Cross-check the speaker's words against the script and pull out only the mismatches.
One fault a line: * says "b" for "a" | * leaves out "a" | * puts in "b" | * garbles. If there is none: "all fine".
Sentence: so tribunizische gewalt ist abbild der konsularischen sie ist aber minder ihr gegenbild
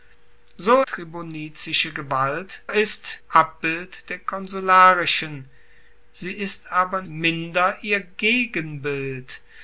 all fine